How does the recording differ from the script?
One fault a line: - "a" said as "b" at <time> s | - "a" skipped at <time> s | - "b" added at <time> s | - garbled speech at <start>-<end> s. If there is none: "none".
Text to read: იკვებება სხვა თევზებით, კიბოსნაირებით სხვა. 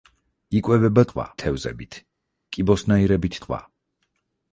none